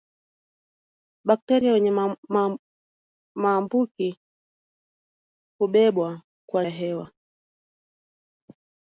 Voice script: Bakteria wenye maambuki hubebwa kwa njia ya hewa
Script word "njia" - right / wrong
wrong